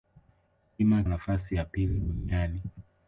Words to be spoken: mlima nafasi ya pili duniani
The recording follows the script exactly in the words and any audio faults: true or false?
true